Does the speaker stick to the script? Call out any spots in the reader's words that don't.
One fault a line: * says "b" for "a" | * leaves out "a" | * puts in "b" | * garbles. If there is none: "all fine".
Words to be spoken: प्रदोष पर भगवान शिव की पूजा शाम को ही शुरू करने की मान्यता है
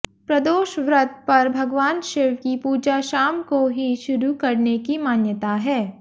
* puts in "व्रत"